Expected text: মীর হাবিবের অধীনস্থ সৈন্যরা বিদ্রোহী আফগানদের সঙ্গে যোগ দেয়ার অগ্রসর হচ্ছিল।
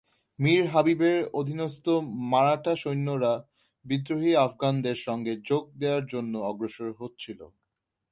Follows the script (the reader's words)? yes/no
no